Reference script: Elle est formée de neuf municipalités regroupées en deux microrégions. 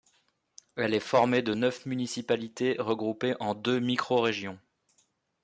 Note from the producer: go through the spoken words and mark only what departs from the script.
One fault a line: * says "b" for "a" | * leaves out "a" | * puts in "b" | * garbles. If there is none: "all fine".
all fine